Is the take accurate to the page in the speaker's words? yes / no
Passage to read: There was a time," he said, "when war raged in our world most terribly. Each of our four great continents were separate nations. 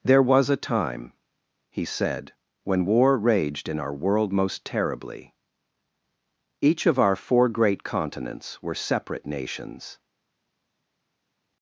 yes